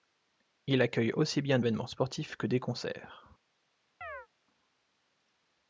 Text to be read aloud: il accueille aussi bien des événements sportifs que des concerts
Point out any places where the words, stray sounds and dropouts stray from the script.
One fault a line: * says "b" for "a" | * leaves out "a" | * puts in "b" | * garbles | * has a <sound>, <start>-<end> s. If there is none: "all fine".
* leaves out "des"
* has a chirp, 4.0-4.3 s